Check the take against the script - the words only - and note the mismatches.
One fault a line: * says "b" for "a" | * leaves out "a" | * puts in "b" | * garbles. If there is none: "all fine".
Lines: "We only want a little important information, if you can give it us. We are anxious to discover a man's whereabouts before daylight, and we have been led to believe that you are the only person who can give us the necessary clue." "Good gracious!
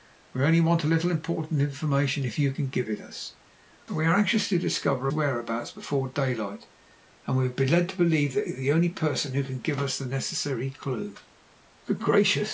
* leaves out "man's"